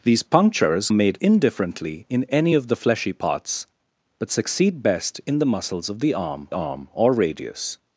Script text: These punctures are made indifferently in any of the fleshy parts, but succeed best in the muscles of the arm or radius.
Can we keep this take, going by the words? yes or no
no